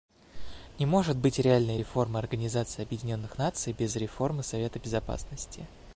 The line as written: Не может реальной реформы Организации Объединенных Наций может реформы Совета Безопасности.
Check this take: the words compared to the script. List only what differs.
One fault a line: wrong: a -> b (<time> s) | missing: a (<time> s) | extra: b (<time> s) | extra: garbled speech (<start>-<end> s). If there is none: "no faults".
extra: быть (1.1 s)
wrong: может -> без (3.7 s)